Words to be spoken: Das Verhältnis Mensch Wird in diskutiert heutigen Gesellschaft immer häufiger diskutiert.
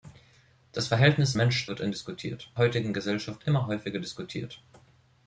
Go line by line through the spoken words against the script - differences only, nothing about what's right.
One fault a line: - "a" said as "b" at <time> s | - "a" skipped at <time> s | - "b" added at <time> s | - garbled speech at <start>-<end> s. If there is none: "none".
none